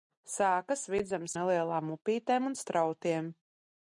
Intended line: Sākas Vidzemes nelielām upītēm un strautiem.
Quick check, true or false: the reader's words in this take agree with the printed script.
true